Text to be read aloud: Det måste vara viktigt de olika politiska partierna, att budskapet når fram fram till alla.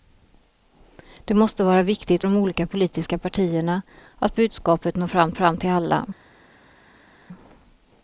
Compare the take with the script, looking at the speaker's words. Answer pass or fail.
pass